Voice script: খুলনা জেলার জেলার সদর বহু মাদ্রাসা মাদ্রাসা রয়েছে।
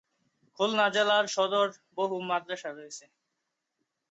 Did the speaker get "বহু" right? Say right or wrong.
right